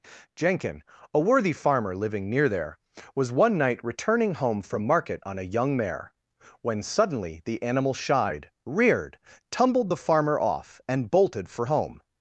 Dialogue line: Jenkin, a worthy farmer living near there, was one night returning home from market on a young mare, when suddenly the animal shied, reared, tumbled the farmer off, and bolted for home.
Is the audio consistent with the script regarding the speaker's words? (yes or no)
yes